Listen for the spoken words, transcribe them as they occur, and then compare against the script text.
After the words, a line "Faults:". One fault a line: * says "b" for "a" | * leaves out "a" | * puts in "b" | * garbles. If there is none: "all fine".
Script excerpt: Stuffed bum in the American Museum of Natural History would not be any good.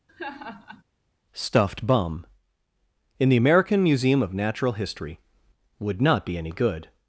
Stuffed bum in the American Museum of Natural History would not be any good.
Faults:
all fine